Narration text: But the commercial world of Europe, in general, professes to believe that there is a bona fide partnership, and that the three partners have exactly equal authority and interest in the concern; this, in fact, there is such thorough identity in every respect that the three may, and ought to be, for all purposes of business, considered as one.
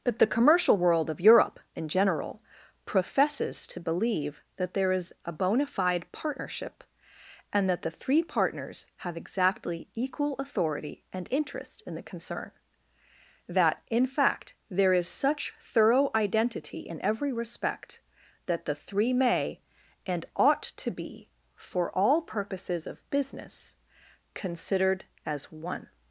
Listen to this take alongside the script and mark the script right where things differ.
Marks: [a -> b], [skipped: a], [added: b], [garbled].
But the commercial world of Europe, in general, professes to believe that there is a bona fide partnership, and that the three partners have exactly equal authority and interest in the concern; [this, -> that] in fact, there is such thorough identity in every respect that the three may, and ought to be, for all purposes of business, considered as one.